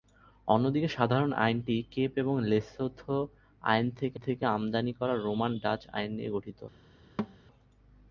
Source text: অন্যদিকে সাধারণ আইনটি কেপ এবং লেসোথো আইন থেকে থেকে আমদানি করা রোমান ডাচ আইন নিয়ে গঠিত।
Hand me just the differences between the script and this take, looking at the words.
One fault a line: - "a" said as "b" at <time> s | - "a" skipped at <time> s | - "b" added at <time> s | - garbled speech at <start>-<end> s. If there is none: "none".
none